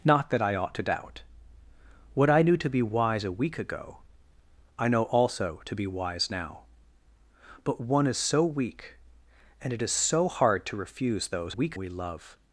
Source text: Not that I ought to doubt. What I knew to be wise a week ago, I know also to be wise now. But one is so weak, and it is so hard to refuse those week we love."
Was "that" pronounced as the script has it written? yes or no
yes